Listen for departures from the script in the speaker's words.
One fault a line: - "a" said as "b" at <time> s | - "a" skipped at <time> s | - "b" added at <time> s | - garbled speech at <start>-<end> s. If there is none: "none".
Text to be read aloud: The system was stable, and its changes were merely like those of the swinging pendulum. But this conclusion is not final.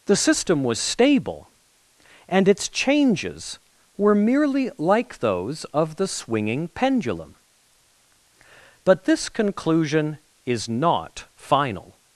none